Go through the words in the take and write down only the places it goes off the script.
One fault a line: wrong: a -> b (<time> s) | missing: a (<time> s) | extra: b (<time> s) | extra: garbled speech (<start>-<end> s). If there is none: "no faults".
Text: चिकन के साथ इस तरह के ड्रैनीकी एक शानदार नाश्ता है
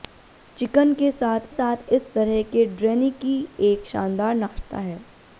extra: साथ (1.5 s)